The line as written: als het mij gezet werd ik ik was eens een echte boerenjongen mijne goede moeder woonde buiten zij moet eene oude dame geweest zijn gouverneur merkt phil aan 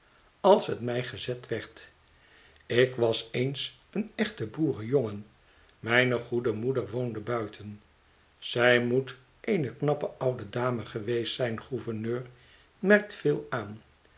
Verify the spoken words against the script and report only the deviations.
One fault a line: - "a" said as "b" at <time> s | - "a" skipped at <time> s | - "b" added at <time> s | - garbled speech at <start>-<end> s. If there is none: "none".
- "ik" skipped at 3.0 s
- "knappe" added at 9.8 s